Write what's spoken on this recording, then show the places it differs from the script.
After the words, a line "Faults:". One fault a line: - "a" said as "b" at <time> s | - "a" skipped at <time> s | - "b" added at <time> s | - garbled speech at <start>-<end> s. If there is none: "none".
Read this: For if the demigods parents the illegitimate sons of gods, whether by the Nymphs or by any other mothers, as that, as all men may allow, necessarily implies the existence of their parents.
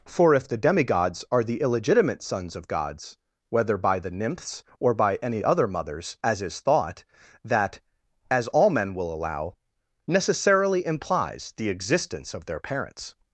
For if the demigods are the illegitimate sons of gods, whether by the Nymphs or by any other mothers, as is thought, that, as all men will allow, necessarily implies the existence of their parents.
Faults:
- "parents" said as "are" at 1.3 s
- "is thought" added at 6.4 s
- "may" said as "will" at 8.9 s